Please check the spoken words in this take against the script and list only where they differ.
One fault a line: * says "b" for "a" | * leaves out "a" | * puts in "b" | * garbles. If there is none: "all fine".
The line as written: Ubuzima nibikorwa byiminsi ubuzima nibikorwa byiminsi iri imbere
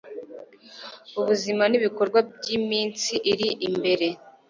* leaves out "ubuzima nibikorwa byiminsi"